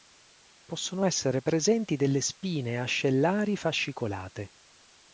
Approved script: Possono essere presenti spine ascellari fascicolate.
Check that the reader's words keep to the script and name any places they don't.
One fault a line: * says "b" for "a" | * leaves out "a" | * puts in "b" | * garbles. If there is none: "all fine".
* puts in "delle"